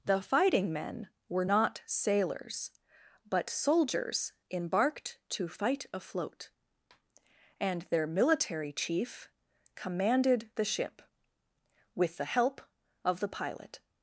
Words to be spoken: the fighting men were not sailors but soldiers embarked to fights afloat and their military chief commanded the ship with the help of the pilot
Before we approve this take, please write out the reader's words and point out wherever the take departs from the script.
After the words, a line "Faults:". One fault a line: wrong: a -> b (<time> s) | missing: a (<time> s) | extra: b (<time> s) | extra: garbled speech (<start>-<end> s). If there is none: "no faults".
the fighting men were not sailors but soldiers embarked to fight afloat and their military chief commanded the ship with the help of the pilot
Faults:
wrong: fights -> fight (5.5 s)